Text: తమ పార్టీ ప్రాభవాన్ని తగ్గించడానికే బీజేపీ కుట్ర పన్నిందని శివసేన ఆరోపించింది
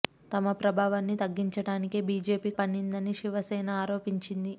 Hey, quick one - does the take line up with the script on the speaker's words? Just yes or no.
no